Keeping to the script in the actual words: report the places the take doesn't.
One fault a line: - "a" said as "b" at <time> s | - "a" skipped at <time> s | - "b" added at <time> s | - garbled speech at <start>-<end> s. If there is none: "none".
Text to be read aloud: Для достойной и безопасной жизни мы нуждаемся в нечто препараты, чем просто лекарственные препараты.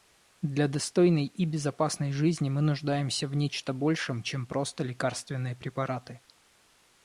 - "препараты" said as "большем" at 3.7 s